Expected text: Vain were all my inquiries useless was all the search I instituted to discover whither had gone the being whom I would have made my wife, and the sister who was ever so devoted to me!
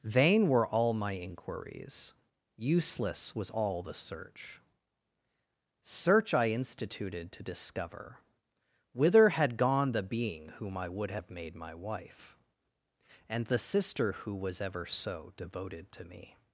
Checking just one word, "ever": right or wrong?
right